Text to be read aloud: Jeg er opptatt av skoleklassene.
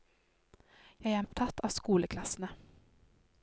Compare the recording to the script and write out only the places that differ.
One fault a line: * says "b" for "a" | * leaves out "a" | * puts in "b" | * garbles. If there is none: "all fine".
all fine